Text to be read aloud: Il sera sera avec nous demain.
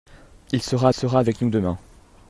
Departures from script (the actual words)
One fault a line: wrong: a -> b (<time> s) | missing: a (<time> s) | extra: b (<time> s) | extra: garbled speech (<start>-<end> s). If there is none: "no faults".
no faults